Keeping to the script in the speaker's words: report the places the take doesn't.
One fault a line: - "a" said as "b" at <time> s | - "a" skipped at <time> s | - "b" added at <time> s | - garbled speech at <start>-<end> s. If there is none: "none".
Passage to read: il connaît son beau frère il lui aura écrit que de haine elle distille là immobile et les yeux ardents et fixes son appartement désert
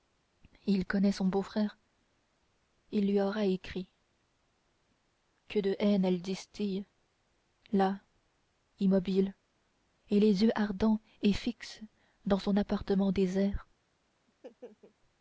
- "dans" added at 12.2 s